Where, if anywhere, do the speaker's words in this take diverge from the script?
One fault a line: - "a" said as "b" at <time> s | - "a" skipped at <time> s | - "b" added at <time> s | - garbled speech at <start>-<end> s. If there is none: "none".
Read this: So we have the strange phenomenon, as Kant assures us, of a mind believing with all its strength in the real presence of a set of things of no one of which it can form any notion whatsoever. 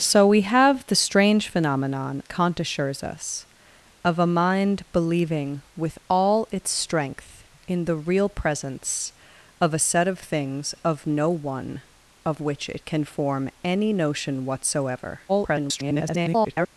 - "as" skipped at 2.2 s
- garbled speech at 15.3-16.7 s